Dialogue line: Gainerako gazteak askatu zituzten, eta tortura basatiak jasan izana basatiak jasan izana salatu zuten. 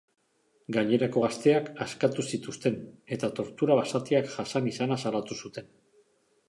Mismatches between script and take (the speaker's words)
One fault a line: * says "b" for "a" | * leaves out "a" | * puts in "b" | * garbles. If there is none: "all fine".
* leaves out "basatiak jasan izana"